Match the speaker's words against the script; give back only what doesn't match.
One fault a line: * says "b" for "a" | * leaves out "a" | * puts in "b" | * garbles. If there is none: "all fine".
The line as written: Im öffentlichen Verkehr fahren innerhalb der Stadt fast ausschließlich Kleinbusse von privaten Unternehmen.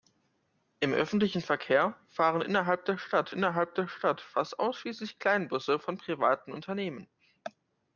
* puts in "innerhalb der Stadt"